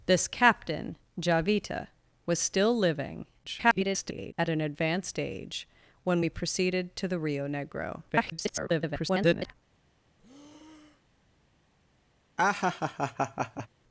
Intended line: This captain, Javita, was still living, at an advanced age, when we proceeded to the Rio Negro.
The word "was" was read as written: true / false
true